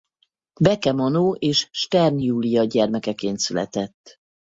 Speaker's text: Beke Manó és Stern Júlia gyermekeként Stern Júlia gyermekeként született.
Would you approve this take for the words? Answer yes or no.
no